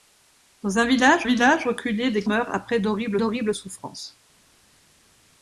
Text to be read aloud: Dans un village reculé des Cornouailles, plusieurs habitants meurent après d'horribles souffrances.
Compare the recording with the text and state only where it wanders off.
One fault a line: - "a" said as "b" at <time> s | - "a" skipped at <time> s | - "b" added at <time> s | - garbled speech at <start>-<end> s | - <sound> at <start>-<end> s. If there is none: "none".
- "village" added at 1.2 s
- "Cornouailles plusieurs habitants" skipped at 2.2 s
- "d'horribles" added at 3.1 s